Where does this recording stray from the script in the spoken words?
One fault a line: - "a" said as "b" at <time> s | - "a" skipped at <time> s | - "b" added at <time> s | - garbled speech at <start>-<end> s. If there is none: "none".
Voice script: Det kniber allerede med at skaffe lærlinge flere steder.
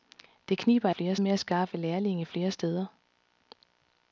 - "allerede" said as "flere" at 0.9 s